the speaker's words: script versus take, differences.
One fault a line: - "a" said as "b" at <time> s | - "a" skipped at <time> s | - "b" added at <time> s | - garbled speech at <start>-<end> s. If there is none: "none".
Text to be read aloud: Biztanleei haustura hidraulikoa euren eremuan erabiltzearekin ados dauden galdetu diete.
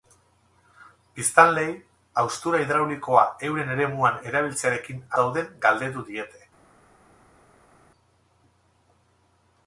- "ados" skipped at 5.0 s